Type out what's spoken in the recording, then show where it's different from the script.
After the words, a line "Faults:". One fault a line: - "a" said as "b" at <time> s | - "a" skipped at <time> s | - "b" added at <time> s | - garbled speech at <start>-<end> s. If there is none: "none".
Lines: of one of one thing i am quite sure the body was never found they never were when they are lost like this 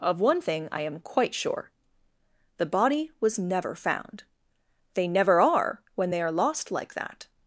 of one thing i am quite sure the body was never found they never are when they are lost like that
Faults:
- "of one" skipped at 0.4 s
- "were" said as "are" at 5.4 s
- "this" said as "that" at 6.9 s